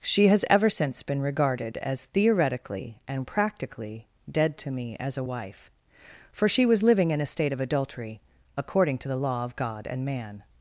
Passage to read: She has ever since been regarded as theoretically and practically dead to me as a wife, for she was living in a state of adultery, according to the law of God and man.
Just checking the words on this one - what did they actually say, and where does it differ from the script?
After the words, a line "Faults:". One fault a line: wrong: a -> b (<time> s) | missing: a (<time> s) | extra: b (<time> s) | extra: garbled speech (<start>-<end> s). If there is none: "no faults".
She has ever since been regarded as theoretically and practically dead to me as a wife, for she was living in a state of adultery, according to the law of God and man.
Faults:
no faults